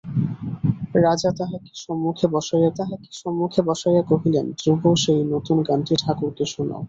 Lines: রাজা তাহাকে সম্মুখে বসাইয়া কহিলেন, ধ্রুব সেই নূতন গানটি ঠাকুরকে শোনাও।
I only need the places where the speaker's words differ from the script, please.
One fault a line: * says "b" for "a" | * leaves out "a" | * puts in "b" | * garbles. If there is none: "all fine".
* puts in "তাহাকে সম্মুখে বসাইয়া"